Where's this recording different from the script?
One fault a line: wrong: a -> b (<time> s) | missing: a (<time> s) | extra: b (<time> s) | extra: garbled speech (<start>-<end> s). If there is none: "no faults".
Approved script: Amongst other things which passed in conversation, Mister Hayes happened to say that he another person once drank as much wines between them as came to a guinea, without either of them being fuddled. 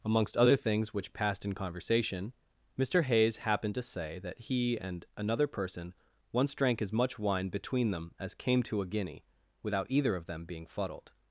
extra: and (4.8 s)
wrong: wines -> wine (7.2 s)